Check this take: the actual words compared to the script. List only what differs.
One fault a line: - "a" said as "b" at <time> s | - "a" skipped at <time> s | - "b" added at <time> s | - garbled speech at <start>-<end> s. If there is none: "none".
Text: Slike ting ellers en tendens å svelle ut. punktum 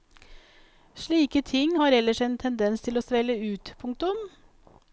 - "har" added at 1.8 s
- "til" added at 2.8 s